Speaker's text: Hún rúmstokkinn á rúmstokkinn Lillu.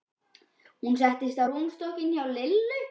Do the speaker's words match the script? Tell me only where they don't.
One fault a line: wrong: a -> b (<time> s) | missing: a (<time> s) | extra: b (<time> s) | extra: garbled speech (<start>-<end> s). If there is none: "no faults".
wrong: rúmstokkinn -> settist (1.0 s)
extra: hjá (2.1 s)